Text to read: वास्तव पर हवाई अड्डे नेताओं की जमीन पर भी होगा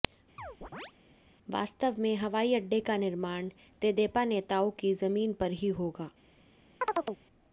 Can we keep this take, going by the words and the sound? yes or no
no